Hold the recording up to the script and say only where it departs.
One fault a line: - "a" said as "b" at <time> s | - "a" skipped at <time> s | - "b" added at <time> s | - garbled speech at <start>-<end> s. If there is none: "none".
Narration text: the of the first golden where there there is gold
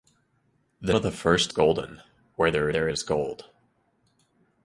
none